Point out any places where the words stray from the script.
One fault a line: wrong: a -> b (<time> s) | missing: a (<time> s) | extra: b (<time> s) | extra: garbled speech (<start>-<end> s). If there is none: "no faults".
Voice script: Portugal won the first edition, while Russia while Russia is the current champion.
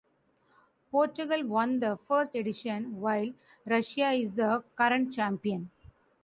missing: while Russia (4.1 s)